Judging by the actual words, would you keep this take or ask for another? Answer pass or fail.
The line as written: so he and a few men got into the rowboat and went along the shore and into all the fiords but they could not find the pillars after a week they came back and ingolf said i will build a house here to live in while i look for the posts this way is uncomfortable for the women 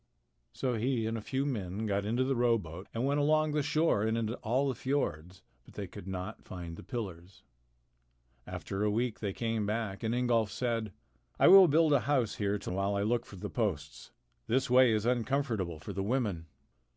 fail